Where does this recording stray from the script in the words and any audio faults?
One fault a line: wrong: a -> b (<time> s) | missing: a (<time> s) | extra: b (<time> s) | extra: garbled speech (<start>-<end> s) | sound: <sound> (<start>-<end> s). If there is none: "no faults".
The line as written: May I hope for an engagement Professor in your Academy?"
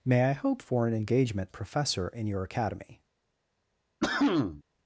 sound: cough (4.0-4.6 s)